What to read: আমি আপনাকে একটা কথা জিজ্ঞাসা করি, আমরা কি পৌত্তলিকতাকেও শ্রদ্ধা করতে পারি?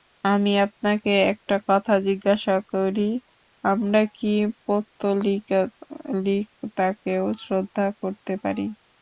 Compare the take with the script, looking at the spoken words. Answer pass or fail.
pass